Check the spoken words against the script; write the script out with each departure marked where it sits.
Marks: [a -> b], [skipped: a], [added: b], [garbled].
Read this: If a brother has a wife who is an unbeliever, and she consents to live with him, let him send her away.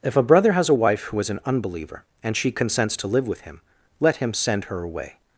If a brother has a wife who is an unbeliever, and she consents to live with him, let him send her away.